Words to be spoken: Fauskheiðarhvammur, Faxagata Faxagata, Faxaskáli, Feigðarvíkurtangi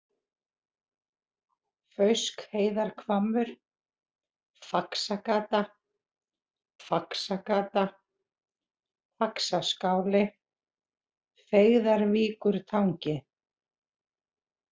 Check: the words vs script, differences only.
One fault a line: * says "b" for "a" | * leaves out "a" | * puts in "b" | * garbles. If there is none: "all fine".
all fine